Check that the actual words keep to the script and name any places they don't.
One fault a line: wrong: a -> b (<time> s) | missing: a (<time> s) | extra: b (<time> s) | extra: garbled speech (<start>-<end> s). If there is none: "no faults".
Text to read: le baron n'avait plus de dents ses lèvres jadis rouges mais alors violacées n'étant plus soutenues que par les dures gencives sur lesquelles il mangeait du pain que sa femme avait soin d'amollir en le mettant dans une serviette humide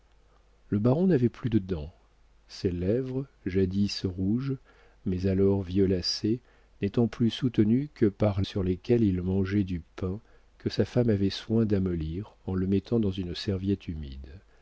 missing: les dures gencives (8.4 s)